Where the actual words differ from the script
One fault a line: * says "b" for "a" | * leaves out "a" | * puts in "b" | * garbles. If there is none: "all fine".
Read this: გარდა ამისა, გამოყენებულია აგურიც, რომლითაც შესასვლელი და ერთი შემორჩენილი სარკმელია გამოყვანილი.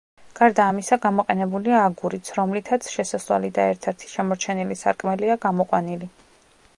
* puts in "ერთ"